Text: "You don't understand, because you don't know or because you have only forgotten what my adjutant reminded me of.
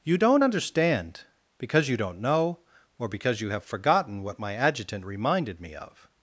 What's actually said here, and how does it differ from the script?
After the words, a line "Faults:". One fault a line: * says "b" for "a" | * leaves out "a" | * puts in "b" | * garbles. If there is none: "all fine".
"You don't understand, because you don't know or because you have forgotten what my adjutant reminded me of.
Faults:
* leaves out "only"